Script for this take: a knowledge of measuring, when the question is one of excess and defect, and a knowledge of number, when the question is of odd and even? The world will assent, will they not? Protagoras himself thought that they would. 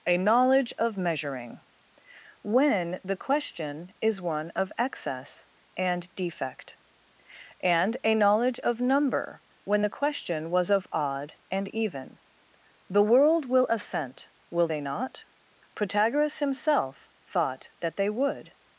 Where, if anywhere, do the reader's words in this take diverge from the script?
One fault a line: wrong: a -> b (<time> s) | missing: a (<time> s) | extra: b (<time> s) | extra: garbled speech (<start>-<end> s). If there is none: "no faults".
wrong: is -> was (10.5 s)